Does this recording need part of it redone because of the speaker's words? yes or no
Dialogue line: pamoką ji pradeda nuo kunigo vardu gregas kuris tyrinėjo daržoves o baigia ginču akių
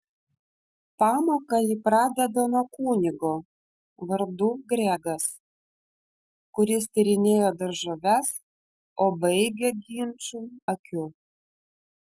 no